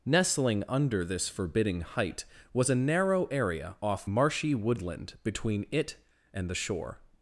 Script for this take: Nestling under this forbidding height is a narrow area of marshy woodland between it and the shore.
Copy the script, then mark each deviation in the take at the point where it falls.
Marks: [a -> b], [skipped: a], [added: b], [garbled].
Nestling under this forbidding height [is -> was] a narrow area [of -> off] marshy woodland between it and the shore.